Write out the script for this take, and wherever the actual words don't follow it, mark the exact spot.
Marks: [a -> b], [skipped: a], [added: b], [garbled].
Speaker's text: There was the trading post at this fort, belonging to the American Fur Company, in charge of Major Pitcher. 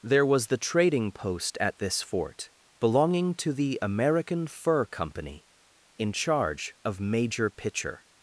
There was the trading post at this fort, belonging to the American Fur Company, in charge of Major Pitcher.